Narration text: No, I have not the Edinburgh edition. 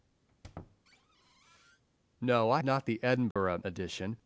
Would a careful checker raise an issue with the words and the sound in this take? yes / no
yes